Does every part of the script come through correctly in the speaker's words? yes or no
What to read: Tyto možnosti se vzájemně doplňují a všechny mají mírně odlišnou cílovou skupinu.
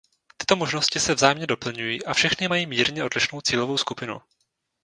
yes